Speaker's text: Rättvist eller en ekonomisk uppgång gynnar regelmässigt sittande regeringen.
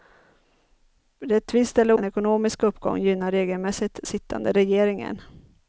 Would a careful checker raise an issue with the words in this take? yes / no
no